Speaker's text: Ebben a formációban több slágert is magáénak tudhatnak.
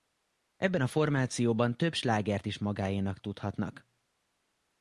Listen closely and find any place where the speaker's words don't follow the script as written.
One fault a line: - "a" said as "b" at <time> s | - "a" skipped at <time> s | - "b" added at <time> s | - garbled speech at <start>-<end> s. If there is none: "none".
none